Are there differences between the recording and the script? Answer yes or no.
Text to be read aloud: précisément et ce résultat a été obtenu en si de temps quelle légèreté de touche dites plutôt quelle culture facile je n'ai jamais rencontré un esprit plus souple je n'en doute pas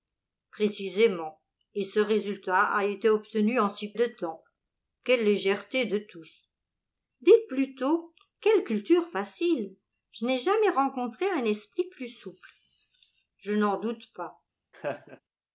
no